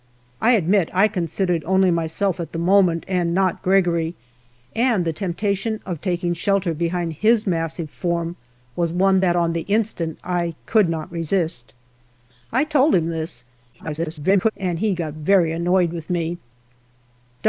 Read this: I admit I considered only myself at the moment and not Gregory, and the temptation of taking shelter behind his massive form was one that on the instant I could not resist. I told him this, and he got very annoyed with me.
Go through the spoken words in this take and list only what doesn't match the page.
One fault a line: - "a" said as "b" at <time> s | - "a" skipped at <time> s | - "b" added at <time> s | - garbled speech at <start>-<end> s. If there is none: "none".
- garbled speech at 13.7-14.5 s